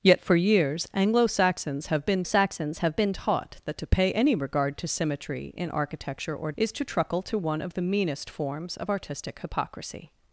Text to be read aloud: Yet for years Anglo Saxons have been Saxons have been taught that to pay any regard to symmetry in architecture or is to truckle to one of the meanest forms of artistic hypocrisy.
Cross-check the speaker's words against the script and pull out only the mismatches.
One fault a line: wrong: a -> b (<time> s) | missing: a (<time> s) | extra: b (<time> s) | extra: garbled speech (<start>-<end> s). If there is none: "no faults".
no faults